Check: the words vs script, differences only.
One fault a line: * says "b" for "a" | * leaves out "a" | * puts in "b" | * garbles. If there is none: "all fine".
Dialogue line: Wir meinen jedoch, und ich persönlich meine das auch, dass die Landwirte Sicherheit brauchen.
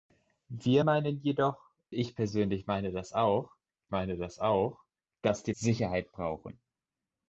* leaves out "und"
* puts in "meine das auch"
* leaves out "Landwirte"